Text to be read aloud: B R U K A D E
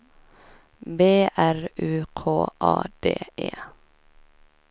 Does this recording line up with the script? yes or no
yes